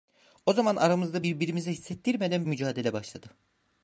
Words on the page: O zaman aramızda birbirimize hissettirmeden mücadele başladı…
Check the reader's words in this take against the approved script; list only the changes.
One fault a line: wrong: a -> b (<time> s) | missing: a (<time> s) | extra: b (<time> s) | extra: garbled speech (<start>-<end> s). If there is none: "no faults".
no faults